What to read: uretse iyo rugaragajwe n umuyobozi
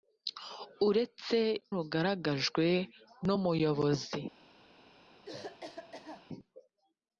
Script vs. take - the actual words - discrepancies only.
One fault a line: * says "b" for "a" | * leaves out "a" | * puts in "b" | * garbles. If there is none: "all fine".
* leaves out "iyo"